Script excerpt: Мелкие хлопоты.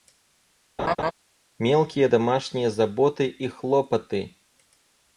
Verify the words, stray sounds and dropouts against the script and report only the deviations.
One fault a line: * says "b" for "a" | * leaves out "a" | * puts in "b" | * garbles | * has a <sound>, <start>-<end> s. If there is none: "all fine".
* has a laugh, 0.8-1.1 s
* puts in "домашние заботы и"